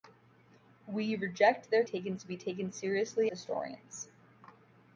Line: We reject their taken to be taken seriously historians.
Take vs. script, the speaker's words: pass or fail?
pass